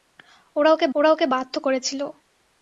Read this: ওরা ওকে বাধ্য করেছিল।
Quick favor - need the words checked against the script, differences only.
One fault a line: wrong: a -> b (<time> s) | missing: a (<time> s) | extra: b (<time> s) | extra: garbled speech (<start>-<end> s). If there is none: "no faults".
extra: ওরা ওকে (0.9 s)